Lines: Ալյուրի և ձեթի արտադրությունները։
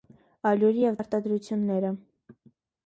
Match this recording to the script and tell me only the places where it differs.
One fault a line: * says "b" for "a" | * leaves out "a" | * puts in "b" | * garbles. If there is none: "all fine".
* leaves out "ձեթի"